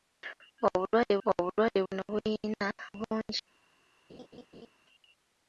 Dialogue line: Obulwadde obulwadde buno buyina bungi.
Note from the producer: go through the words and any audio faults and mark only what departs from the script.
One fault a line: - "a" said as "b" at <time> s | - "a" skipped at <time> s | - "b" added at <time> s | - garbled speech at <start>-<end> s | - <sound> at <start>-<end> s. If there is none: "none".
- laugh at 4.1-4.7 s